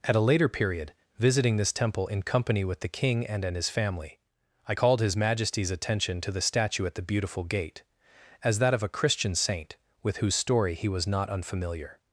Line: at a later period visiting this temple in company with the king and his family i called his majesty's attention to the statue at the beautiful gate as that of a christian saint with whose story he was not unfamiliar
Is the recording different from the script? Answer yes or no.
yes